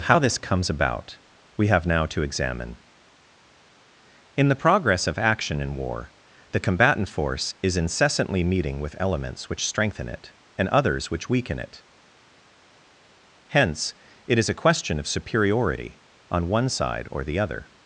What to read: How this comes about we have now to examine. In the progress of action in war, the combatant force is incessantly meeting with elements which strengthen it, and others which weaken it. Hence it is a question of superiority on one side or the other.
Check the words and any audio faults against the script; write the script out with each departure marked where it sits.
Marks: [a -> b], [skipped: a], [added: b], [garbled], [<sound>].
How this comes about we have now to examine. In the progress of action in war, the combatant force is incessantly meeting with elements which strengthen it, and others which weaken it. Hence it is a question of superiority on one side or the other.